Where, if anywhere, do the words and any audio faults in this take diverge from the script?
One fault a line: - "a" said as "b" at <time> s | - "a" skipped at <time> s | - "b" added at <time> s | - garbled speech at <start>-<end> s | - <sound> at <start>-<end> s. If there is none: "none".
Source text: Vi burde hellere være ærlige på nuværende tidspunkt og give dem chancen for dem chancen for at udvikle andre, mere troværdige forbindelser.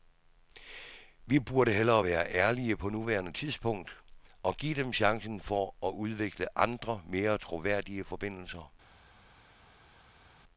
- "dem chancen for" skipped at 5.7 s